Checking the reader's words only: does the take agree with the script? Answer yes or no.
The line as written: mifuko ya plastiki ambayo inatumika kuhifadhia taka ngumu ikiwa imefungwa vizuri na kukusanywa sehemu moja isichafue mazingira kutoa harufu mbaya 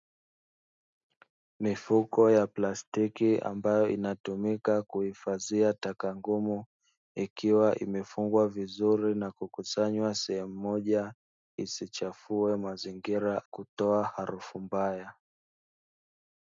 yes